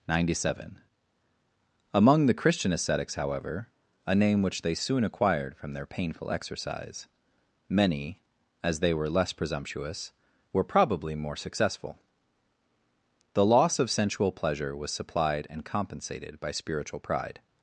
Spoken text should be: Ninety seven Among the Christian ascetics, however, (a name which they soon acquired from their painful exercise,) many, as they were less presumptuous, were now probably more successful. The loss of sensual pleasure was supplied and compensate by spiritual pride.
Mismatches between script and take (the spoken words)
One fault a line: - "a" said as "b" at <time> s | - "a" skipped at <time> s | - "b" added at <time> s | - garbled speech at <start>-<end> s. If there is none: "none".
- "now" skipped at 10.6 s
- "compensate" said as "compensated" at 15.6 s